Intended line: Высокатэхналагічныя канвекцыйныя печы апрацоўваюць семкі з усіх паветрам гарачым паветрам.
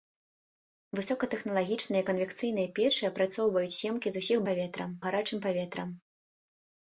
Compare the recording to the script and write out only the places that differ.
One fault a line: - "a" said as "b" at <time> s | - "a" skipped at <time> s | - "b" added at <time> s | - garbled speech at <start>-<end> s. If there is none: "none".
none